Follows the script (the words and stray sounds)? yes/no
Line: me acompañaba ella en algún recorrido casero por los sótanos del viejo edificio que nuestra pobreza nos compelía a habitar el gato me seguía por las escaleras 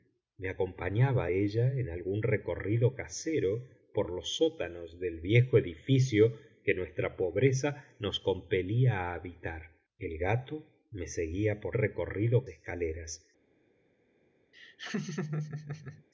no